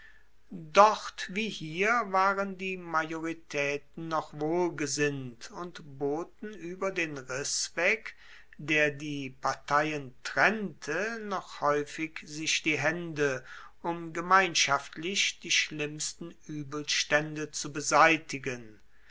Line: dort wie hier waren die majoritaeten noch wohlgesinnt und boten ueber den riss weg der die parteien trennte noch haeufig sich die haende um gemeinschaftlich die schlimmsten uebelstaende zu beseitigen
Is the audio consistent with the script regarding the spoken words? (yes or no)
yes